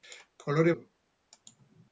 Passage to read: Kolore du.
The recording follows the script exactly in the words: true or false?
true